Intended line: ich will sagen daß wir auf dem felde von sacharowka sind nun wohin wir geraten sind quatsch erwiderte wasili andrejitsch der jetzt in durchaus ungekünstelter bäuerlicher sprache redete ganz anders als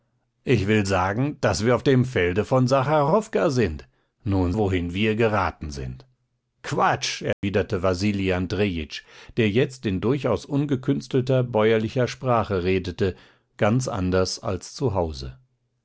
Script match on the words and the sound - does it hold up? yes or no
no